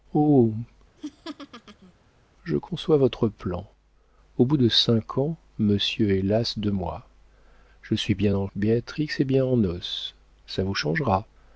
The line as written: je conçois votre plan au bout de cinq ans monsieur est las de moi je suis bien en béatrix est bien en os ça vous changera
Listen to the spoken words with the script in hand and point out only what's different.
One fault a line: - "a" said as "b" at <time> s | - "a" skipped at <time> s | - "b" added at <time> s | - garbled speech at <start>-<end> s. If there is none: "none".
none